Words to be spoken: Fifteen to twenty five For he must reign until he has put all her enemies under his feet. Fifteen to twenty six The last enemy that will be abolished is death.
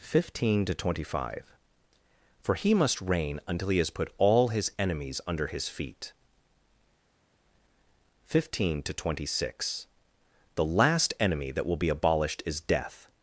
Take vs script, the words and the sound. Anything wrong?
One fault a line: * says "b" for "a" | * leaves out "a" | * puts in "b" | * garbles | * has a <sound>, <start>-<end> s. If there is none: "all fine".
* says "his" for "her"